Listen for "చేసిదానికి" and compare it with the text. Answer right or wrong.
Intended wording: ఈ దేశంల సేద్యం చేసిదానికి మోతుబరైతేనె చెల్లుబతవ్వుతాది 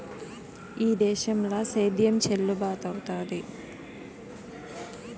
wrong